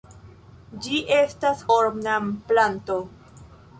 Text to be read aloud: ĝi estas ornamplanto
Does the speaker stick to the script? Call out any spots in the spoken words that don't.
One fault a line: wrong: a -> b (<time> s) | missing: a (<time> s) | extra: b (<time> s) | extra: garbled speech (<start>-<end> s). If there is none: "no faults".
no faults